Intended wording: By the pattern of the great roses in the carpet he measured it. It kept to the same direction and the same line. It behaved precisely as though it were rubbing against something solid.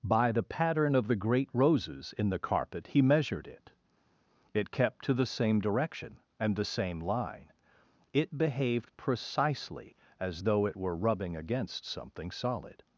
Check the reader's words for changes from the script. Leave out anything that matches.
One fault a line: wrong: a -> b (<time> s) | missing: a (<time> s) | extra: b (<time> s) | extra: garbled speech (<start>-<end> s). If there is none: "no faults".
no faults